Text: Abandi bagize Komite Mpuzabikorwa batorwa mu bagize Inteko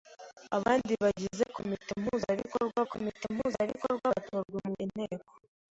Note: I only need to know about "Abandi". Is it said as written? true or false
true